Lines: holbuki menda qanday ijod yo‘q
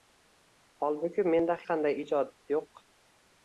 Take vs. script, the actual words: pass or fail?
pass